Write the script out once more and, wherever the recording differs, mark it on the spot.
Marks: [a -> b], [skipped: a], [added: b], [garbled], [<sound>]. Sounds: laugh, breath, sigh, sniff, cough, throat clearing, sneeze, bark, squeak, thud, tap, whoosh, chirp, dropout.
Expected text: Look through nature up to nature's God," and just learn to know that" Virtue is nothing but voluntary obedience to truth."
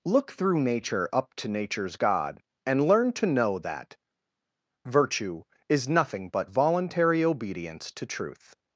Look through nature up to nature's God," and [skipped: just] learn to know that" Virtue is nothing but voluntary obedience to truth."